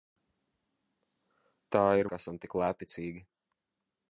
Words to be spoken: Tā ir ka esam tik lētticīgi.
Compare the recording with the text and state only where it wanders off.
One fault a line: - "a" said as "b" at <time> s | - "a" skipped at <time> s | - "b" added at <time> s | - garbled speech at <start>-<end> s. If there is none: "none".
none